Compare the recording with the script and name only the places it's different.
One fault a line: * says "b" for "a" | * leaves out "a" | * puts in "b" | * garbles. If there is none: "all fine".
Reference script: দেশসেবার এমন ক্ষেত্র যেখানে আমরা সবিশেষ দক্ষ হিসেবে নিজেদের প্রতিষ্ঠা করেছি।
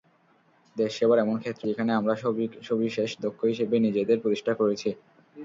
all fine